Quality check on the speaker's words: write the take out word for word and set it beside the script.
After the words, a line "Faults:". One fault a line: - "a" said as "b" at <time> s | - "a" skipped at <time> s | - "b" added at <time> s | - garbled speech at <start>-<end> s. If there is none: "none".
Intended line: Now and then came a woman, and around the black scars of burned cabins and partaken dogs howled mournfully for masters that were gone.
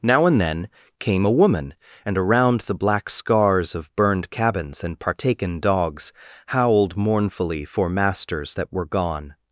Now and then came a woman, and around the black scars of burned cabins and partaken dogs howled mournfully for masters that were gone.
Faults:
none